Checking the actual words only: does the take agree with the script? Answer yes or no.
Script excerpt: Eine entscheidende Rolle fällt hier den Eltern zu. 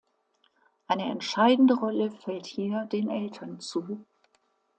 yes